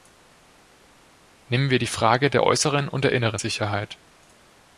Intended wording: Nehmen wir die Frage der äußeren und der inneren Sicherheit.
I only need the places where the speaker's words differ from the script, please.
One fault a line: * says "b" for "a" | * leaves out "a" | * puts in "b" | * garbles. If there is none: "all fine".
all fine